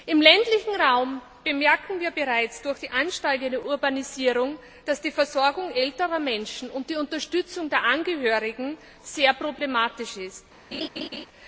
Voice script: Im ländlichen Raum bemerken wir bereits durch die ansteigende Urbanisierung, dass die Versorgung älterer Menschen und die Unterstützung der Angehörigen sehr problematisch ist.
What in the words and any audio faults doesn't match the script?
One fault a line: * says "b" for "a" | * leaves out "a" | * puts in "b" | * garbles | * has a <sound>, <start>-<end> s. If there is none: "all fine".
* has a laugh, 10.7-11.3 s